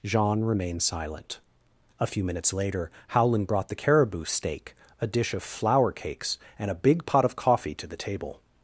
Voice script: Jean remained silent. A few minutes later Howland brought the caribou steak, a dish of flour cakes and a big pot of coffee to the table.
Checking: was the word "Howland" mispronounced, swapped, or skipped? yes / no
no